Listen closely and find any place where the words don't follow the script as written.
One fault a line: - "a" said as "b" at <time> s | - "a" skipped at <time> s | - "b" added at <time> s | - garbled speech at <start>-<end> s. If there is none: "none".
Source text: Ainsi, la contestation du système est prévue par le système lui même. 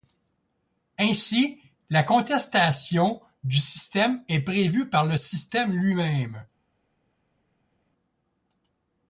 none